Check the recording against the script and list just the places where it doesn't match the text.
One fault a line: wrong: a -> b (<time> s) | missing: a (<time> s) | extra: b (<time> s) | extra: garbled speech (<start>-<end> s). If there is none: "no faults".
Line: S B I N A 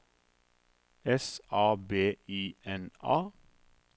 extra: A (1.5 s)